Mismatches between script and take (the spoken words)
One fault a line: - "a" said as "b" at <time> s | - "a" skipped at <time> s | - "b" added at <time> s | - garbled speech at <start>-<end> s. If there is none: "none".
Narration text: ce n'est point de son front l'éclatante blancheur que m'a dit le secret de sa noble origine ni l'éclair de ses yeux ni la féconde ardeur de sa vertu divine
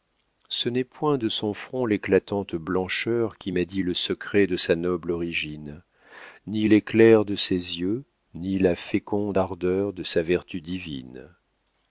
- "que" said as "qui" at 3.4 s